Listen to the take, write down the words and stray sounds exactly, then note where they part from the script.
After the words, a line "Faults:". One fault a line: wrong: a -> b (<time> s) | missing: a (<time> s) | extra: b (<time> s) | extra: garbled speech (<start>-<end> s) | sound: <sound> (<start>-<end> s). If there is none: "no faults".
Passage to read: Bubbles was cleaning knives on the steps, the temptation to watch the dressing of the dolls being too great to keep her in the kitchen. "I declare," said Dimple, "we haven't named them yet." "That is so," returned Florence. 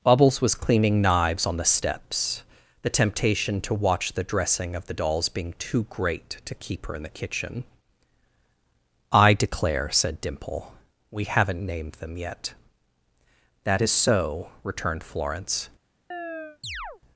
Bubbles was cleaning knives on the steps, the temptation to watch the dressing of the dolls being too great to keep her in the kitchen. "I declare," said Dimple, "we haven't named them yet." "That is so," returned Florence.
Faults:
sound: chirp (16.1-17.0 s)